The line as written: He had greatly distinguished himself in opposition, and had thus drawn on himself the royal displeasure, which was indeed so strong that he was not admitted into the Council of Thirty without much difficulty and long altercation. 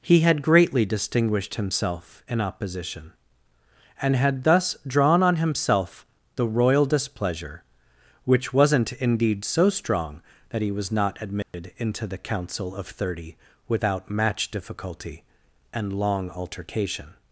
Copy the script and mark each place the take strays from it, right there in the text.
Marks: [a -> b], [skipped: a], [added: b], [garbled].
He had greatly distinguished himself in opposition, and had thus drawn on himself the royal displeasure, which [was -> wasn't] indeed so strong that he was not admitted into the Council of Thirty without [much -> match] difficulty and long altercation.